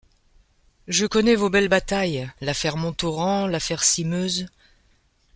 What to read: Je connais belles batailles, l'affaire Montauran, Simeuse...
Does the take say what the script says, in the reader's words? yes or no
no